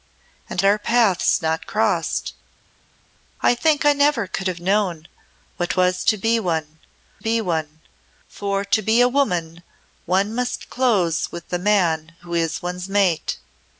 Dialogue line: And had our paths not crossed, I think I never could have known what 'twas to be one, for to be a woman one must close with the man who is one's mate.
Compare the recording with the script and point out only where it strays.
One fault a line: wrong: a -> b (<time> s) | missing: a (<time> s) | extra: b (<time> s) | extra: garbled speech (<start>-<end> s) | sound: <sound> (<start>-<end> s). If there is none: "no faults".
missing: had (0.6 s)
extra: be one (7.2 s)